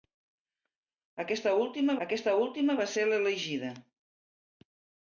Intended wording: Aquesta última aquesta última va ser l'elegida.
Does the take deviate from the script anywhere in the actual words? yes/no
no